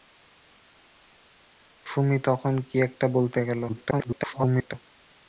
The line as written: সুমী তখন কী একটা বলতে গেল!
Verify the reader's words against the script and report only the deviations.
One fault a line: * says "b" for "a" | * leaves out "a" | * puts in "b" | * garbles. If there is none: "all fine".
* garbles